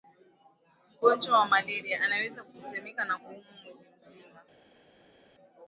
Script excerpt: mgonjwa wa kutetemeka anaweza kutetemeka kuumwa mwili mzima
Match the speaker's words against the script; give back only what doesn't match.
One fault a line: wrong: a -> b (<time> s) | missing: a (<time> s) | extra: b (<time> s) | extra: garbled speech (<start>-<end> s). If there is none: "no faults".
wrong: kutetemeka -> malaria (1.5 s)
extra: na (3.0 s)